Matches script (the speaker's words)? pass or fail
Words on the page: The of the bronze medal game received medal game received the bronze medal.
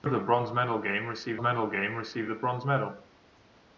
pass